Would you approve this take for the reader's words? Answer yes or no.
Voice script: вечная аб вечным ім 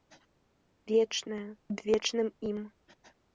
yes